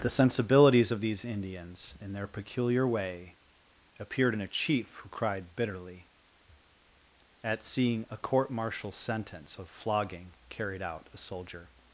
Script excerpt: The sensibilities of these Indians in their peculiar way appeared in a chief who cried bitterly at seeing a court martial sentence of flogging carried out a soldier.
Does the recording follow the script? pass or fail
pass